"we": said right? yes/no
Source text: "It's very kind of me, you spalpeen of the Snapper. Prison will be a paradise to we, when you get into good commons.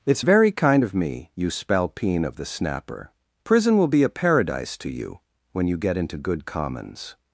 no